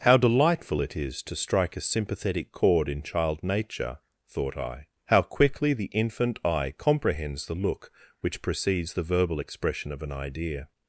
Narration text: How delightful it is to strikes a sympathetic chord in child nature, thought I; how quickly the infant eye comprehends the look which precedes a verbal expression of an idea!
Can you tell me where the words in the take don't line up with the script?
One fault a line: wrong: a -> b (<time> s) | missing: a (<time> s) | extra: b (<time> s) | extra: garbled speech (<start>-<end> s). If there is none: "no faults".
wrong: strikes -> strike (1.4 s)
wrong: a -> the (8.9 s)